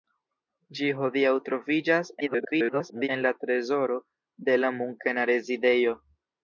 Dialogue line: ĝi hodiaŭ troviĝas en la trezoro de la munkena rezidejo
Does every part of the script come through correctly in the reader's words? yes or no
no